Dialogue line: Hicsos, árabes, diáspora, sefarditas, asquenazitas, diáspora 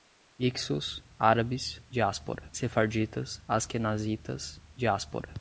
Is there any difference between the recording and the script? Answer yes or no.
no